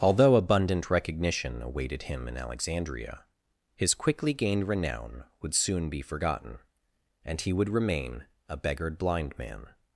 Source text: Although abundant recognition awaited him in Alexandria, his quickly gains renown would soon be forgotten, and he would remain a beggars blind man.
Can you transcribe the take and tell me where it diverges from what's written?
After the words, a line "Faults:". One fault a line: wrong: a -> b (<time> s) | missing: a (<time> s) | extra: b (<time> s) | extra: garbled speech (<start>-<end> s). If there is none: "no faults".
Although abundant recognition awaited him in Alexandria, his quickly gained renown would soon be forgotten, and he would remain a beggared blind man.
Faults:
wrong: gains -> gained (4.3 s)
wrong: beggars -> beggared (8.6 s)